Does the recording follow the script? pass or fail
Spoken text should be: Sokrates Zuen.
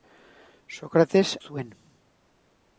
pass